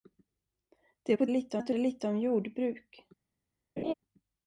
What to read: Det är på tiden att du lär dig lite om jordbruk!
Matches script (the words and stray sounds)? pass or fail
fail